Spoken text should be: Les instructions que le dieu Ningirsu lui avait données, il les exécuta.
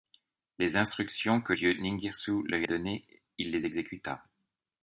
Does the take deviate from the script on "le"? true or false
true